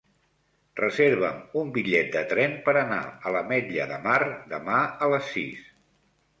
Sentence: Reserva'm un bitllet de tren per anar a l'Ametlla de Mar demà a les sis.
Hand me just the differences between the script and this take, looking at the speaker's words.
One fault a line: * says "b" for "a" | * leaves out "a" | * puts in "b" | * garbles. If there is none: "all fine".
all fine